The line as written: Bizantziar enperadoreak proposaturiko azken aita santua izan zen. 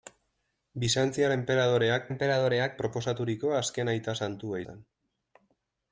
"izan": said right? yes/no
no